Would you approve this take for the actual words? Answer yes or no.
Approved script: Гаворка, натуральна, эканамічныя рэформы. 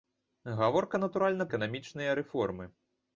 yes